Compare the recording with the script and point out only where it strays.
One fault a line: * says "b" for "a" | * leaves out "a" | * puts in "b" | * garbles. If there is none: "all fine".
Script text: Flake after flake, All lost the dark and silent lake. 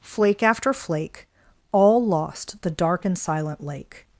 all fine